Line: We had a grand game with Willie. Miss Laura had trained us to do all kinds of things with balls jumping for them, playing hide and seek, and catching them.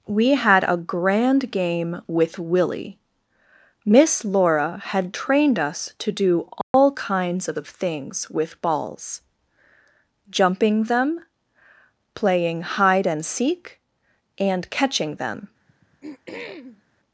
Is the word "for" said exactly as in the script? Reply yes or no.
no